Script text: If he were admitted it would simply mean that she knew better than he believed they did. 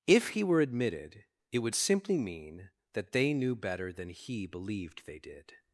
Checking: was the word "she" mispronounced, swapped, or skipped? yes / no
yes